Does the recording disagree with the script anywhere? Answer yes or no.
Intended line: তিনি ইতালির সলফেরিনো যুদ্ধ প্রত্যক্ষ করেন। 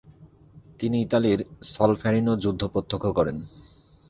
no